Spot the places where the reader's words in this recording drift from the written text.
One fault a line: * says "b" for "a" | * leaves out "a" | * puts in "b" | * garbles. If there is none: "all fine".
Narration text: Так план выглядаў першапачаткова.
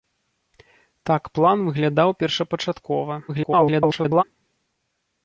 * garbles